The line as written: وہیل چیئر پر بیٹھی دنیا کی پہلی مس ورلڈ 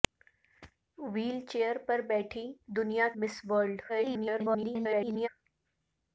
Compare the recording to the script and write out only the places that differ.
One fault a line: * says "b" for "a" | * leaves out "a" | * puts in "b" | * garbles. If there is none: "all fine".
* leaves out "کی پہلی"
* garbles